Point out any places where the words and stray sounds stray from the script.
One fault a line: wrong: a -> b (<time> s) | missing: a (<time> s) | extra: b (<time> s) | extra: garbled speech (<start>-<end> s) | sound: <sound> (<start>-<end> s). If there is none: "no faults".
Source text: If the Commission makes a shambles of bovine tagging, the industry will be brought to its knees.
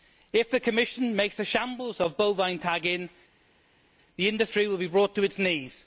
no faults